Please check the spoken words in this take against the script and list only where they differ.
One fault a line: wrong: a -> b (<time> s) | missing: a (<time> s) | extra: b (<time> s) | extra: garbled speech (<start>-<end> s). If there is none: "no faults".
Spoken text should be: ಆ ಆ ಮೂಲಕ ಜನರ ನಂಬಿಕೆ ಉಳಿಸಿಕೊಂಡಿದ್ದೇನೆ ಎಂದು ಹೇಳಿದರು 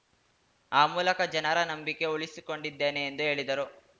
missing: ಆ (0.8 s)